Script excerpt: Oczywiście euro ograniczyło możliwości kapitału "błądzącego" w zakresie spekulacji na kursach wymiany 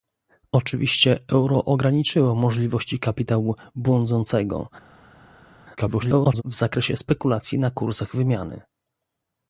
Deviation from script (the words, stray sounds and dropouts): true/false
true